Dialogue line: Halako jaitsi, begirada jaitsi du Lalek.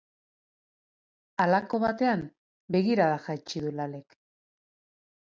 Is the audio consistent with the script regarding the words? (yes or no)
no